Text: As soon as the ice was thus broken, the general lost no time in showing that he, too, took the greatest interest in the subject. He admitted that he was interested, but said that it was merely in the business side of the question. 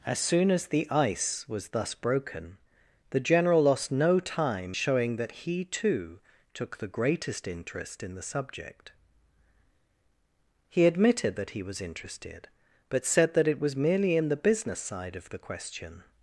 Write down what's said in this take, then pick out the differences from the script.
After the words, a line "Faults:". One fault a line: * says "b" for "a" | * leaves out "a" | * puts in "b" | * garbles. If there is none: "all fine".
As soon as the ice was thus broken, the general lost no time showing that he, too, took the greatest interest in the subject. He admitted that he was interested, but said that it was merely in the business side of the question.
Faults:
* leaves out "in"